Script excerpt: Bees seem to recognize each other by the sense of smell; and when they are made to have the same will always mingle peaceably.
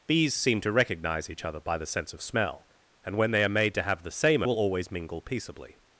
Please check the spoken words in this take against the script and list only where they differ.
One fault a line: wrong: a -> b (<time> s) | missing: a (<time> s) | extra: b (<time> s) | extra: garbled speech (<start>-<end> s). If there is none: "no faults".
no faults